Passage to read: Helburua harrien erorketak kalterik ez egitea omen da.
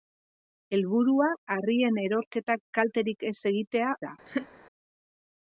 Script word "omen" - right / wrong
wrong